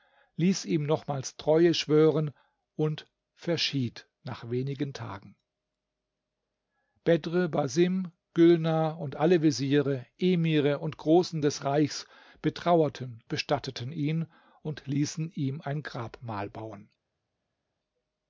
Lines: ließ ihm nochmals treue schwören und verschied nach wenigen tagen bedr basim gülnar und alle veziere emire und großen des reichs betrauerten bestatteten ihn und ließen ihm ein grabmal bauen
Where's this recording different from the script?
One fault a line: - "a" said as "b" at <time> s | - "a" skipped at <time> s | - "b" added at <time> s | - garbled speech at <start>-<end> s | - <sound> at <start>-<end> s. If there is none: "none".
none